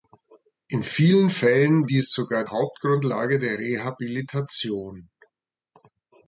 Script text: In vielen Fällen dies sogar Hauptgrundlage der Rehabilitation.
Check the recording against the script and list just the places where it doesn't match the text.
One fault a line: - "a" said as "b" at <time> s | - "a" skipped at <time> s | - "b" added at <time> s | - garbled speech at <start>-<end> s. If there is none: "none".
none